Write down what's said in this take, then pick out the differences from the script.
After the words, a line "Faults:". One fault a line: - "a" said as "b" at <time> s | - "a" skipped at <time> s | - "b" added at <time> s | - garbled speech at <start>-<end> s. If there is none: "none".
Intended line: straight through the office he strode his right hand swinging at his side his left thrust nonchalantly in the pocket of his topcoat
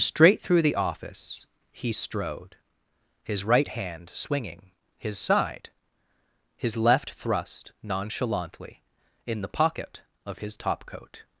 straight through the office he strode his right hand swinging his side his left thrust nonchalantly in the pocket of his topcoat
Faults:
- "at" skipped at 4.7 s